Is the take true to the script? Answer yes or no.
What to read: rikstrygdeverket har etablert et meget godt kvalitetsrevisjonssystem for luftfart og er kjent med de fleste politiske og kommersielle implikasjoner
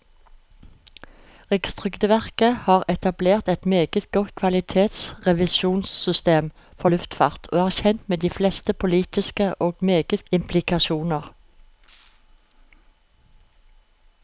no